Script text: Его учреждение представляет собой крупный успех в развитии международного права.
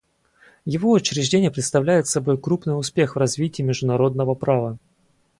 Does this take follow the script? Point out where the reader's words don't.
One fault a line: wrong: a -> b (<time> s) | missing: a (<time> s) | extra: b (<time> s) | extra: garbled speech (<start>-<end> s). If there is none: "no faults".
no faults